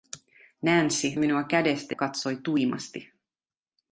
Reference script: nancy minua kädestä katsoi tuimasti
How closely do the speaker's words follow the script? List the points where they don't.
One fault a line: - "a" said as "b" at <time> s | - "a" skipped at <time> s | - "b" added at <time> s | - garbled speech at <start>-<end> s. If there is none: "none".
none